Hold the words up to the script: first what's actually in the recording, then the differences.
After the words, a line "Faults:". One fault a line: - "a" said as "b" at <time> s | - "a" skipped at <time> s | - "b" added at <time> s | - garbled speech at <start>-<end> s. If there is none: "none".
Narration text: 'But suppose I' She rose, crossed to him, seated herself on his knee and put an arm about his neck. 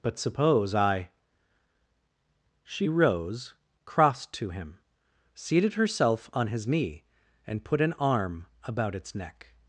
'But suppose I' She rose, crossed to him, seated herself on his knee and put an arm about its neck.
Faults:
- "his" said as "its" at 8.9 s